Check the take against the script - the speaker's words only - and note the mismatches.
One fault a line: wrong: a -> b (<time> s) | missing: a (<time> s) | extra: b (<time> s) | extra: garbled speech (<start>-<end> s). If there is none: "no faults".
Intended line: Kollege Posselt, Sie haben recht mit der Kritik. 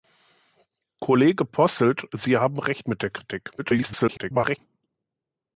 extra: garbled speech (3.6-4.6 s)